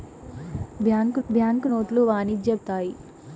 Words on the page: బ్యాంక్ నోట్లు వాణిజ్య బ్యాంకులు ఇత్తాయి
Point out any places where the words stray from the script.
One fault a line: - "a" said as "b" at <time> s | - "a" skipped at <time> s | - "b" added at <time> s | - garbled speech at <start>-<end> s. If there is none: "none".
- "బ్యాంక్" added at 1.3 s
- "బ్యాంకులు" skipped at 2.5 s